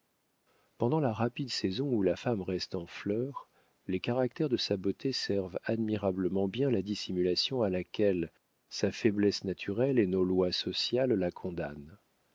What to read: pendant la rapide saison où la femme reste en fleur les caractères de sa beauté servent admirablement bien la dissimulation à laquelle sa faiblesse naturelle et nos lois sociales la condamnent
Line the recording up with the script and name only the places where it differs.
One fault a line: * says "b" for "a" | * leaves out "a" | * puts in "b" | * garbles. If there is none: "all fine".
all fine